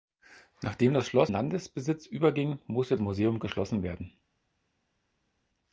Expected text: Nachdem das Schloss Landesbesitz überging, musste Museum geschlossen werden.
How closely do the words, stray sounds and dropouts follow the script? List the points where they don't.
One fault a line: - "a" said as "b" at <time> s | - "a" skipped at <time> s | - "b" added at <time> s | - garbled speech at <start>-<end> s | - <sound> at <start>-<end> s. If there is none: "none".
none